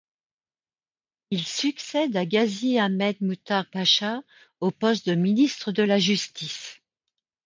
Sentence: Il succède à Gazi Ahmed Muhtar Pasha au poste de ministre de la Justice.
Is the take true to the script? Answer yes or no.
yes